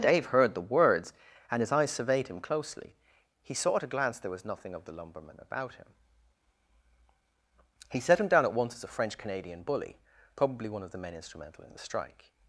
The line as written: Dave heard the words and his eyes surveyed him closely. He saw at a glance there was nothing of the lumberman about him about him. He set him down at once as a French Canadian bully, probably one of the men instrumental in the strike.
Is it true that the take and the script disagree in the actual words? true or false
true